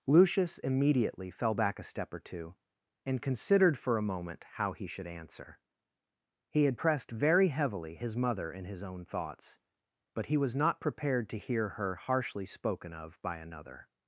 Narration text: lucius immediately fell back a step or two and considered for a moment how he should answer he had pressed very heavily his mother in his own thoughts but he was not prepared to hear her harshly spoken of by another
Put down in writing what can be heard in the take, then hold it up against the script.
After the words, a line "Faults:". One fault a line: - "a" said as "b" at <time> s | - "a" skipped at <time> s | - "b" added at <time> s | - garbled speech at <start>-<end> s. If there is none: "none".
lucius immediately fell back a step or two and considered for a moment how he should answer he had pressed very heavily his mother in his own thoughts but he was not prepared to hear her harshly spoken of by another
Faults:
none